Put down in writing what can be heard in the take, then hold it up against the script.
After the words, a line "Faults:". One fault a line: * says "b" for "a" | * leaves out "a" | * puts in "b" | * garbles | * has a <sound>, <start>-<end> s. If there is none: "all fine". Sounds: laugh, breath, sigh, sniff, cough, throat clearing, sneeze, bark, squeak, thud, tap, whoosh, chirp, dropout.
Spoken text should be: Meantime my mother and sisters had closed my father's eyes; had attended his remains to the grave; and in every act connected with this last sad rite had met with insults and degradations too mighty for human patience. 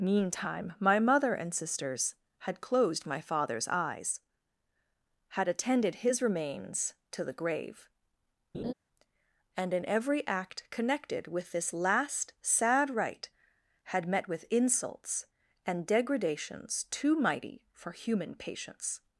Meantime my mother and sisters had closed my father's eyes; had attended his remains to the grave; and in every act connected with this last sad rite had met with insults and degradations too mighty for human patience.
Faults:
* has a laugh, 8.5-8.7 s